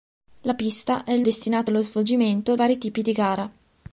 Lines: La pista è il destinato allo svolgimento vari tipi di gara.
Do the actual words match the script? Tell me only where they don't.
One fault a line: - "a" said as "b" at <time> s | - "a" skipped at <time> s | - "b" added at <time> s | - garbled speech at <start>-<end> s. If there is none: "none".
none